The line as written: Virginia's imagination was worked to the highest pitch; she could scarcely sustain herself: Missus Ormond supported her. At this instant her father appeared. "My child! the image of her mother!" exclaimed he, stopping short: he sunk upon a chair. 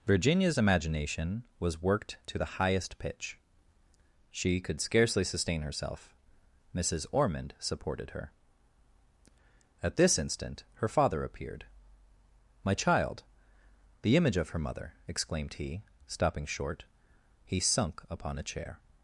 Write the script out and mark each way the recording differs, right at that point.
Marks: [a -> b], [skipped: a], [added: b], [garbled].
Virginia's imagination was worked to the highest pitch; she could scarcely sustain herself: Missus Ormond supported her. At this instant her father appeared. "My child! the image of her mother!" exclaimed he, stopping short: he sunk upon a chair.